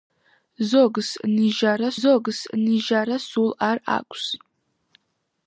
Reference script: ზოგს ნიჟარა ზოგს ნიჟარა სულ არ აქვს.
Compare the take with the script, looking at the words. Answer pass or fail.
pass